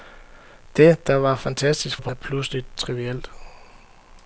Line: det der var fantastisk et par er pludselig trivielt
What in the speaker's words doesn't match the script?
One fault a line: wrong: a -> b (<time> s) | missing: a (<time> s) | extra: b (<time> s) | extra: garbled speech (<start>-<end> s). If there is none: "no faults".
no faults